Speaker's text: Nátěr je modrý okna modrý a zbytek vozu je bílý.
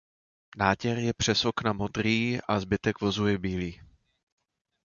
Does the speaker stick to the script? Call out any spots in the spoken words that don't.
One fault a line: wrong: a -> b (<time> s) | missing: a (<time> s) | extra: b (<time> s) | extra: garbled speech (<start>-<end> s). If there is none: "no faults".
wrong: modrý -> přes (1.1 s)